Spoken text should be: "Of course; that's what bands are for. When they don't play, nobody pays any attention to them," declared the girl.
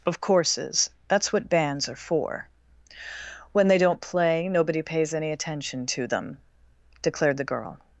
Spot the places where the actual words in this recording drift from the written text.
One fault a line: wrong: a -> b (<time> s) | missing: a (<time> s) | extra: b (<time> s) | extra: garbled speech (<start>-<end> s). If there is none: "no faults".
wrong: course -> courses (0.2 s)